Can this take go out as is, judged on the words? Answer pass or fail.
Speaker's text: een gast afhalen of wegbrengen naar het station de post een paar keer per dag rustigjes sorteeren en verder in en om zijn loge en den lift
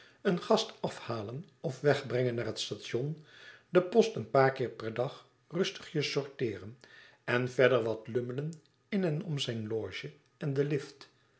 fail